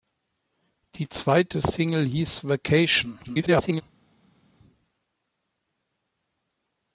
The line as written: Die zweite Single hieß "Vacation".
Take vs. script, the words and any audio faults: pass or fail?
fail